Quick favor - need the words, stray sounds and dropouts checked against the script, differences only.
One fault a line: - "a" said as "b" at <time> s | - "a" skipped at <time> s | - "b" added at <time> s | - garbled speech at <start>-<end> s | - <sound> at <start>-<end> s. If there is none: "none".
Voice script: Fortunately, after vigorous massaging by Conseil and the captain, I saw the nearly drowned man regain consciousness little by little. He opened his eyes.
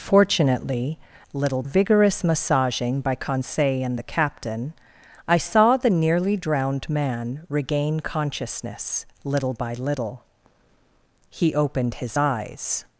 - "after" said as "little" at 1.3 s